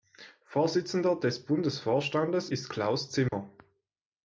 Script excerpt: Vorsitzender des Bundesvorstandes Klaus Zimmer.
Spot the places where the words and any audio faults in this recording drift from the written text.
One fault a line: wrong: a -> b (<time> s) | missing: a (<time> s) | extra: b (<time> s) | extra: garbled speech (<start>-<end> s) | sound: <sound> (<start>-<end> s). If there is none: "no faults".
extra: ist (2.4 s)
sound: dropout (3.3-3.3 s)